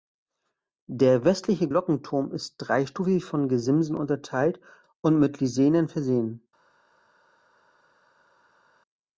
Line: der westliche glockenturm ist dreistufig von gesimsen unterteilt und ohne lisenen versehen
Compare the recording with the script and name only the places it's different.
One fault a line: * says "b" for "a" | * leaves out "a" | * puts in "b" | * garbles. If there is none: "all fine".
* says "mit" for "ohne"